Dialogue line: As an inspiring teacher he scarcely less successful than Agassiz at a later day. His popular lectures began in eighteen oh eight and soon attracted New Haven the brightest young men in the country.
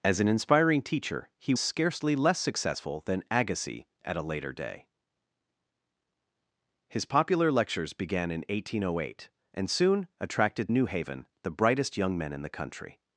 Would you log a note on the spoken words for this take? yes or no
no